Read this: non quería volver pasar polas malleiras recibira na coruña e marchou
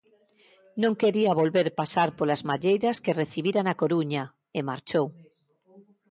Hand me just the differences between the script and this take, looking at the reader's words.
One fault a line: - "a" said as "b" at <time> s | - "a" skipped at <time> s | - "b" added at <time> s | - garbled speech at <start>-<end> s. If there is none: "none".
- "que" added at 3.0 s